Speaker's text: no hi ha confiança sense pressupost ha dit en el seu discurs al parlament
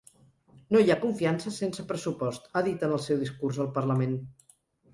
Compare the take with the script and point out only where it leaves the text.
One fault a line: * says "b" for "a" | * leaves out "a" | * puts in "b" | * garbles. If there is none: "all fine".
all fine